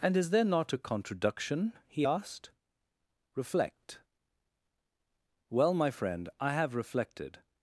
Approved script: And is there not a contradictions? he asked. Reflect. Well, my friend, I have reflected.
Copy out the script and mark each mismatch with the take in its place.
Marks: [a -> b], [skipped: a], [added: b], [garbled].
And is there not a [contradictions? -> contradiction] he asked. Reflect. Well, my friend, I have reflected.